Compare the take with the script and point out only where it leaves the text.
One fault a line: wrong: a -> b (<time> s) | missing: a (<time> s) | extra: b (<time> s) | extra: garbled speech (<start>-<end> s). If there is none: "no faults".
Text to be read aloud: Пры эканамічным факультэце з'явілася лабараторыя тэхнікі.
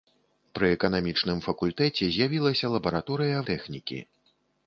no faults